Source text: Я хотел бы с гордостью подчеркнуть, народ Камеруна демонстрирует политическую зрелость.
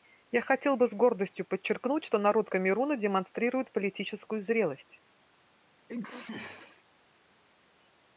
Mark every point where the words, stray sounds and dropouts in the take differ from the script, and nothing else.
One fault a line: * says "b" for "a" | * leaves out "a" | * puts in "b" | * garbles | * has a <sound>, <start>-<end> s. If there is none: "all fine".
* puts in "что"
* has a sneeze, 5.9-6.8 s